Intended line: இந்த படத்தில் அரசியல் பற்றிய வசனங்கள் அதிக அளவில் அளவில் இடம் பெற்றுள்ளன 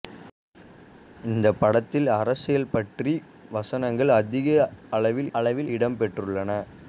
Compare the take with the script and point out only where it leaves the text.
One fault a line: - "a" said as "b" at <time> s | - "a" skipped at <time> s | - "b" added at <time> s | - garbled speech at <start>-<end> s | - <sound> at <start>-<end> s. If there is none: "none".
none